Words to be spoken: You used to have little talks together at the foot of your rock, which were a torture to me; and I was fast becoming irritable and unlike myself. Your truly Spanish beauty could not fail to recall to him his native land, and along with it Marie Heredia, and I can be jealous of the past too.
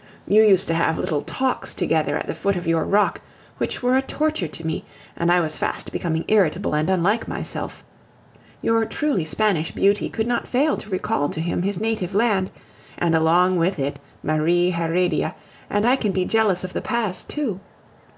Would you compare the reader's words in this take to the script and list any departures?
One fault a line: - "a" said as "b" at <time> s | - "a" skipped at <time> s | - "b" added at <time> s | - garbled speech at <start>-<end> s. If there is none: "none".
none